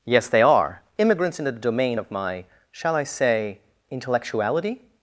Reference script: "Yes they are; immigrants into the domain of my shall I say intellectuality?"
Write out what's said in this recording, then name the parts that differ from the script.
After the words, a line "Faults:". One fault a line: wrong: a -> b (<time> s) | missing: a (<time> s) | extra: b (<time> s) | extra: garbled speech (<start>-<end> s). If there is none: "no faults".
"Yes they are; immigrants in the domain of my shall I say intellectuality?"
Faults:
wrong: into -> in (1.4 s)